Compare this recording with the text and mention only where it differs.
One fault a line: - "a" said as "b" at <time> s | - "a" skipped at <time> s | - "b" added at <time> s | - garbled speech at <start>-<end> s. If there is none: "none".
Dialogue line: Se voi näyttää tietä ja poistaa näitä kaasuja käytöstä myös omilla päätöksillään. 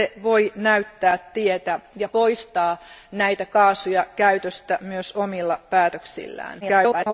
- garbled speech at 6.6-7.1 s